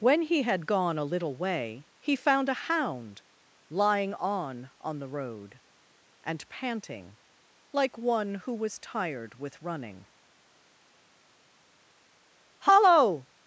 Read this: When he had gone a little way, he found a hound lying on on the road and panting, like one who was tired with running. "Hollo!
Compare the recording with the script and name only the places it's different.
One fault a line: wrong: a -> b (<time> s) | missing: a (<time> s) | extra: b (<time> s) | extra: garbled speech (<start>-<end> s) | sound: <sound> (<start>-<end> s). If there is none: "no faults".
no faults